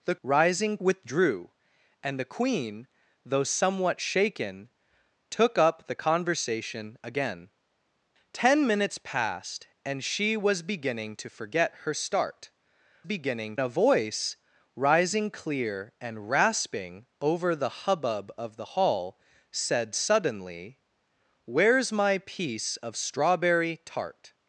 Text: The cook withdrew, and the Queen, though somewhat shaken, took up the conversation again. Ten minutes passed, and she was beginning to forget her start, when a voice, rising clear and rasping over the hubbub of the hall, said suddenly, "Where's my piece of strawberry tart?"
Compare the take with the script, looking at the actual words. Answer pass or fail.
fail